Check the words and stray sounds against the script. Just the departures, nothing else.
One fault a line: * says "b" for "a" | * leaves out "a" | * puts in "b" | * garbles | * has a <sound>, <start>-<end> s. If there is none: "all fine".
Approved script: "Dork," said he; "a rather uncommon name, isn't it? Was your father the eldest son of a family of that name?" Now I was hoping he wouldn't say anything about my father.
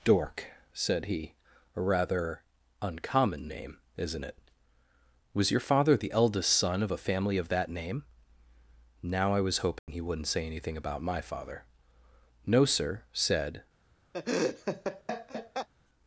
* has a dropout, 9.8-9.9 s
* puts in "No sir said"
* has a laugh, 14.1-15.7 s